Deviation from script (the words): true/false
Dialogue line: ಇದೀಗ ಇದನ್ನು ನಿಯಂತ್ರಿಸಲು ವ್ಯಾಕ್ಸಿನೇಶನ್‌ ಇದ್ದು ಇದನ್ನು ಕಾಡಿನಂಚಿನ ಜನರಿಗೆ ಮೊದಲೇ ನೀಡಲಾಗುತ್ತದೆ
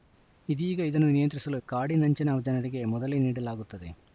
true